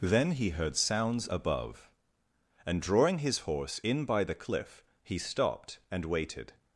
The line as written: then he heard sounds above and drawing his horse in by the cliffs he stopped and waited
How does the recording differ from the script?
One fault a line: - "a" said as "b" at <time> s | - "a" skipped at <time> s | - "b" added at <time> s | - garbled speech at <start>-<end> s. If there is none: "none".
- "cliffs" said as "cliff" at 4.3 s